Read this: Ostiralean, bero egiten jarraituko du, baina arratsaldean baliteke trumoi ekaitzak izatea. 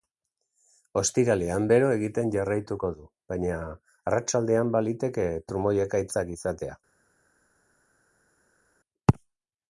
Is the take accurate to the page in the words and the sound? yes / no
yes